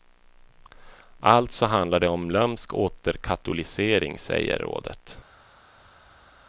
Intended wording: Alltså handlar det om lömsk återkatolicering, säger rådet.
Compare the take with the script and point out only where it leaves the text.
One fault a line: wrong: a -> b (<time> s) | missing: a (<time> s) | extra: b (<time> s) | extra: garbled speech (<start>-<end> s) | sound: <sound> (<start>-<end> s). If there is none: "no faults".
no faults